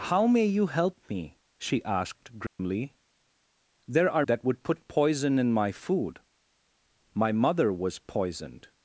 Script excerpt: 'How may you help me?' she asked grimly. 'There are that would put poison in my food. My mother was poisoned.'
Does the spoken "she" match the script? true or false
true